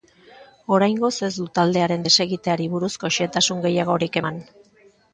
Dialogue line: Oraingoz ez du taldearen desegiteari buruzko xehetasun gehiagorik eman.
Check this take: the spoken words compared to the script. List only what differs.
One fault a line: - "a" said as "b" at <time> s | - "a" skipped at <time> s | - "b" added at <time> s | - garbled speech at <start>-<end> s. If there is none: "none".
none